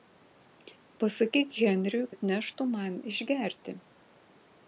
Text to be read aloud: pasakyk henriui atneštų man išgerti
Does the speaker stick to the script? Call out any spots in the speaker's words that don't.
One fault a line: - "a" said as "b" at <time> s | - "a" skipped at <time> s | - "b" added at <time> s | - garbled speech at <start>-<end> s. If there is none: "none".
none